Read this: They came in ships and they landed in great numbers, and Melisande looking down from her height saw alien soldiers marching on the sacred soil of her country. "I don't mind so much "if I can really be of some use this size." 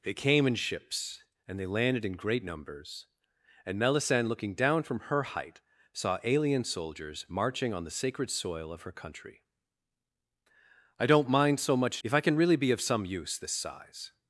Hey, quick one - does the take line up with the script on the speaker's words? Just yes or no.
yes